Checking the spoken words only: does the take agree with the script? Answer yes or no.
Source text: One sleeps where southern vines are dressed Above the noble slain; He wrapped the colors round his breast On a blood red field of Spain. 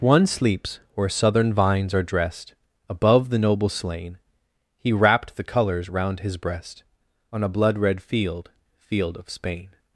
no